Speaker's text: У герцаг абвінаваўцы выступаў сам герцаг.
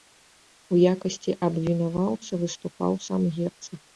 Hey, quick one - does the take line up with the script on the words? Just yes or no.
no